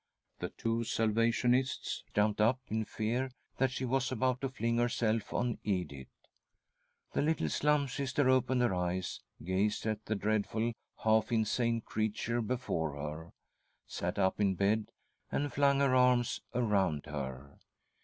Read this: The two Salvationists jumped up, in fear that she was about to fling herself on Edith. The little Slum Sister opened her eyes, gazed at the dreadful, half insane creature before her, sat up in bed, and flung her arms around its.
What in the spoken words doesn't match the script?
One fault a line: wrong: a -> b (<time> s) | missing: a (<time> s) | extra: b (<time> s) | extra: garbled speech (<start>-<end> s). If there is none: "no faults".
wrong: its -> her (17.1 s)